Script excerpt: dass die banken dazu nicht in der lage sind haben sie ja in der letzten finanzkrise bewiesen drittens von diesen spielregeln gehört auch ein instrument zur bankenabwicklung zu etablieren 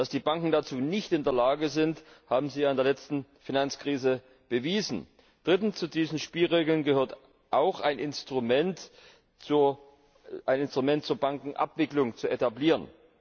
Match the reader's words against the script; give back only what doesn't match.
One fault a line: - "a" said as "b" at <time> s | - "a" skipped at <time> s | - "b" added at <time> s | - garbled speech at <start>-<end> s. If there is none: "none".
- "von" said as "zu" at 5.7 s